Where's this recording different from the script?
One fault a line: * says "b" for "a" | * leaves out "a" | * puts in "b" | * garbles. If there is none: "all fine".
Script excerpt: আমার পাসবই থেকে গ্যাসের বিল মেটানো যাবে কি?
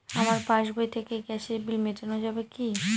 all fine